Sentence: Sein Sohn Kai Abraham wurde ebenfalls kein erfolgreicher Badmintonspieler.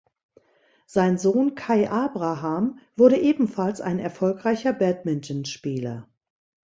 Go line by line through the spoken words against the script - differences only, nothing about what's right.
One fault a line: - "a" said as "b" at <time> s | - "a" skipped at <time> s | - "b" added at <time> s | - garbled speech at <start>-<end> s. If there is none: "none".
- "kein" said as "ein" at 3.8 s